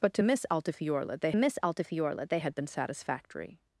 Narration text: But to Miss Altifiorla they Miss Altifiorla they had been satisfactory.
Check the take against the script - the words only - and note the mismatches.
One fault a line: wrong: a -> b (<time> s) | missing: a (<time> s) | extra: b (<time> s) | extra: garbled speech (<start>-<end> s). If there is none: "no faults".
no faults